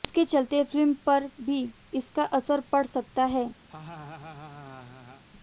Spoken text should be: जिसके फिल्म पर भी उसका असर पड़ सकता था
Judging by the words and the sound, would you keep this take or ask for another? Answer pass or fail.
fail